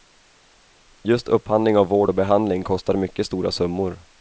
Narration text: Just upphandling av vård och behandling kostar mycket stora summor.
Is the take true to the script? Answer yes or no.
yes